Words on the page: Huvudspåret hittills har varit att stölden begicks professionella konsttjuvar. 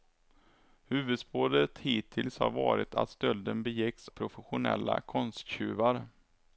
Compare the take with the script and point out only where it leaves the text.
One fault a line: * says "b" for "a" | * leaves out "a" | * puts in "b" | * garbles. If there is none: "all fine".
all fine